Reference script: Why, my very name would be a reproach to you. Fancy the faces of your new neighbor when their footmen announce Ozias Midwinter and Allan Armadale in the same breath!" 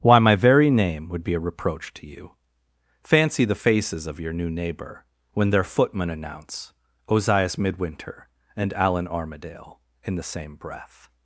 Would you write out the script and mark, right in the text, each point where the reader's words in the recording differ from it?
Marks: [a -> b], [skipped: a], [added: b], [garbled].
Why, my very name would be a reproach to you. Fancy the faces of your new neighbor when their footmen announce Ozias Midwinter and Allan Armadale in the same breath!"